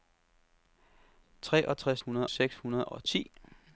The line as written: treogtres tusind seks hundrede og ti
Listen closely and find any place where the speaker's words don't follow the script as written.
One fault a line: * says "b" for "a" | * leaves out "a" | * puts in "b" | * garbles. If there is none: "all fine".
* says "hundrede" for "tusind"